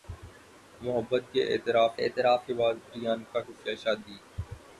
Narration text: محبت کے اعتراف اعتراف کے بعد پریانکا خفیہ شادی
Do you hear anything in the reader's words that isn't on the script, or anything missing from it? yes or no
no